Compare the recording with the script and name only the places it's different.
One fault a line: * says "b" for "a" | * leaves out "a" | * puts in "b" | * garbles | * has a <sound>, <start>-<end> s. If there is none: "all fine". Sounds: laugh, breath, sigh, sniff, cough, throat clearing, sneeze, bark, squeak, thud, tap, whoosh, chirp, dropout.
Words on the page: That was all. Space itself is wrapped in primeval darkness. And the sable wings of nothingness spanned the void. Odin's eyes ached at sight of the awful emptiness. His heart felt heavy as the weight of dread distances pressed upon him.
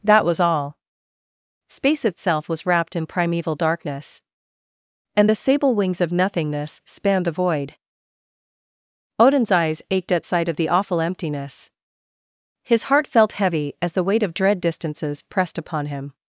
* says "was" for "is"